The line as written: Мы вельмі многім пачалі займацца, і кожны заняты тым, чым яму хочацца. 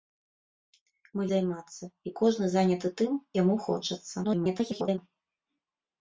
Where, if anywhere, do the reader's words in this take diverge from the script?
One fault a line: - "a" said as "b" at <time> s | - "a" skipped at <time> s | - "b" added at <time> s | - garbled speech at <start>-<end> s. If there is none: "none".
- "вельмі многім пачалі" skipped at 1.2 s
- "чым" skipped at 3.1 s
- garbled speech at 4.2-5.0 s